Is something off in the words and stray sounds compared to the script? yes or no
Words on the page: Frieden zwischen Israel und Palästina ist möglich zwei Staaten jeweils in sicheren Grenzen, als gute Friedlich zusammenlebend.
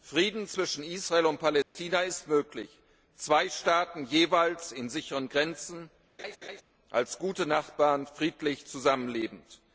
yes